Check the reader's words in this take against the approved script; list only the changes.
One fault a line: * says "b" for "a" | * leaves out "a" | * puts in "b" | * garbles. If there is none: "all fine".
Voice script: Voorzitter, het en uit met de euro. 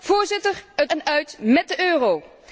all fine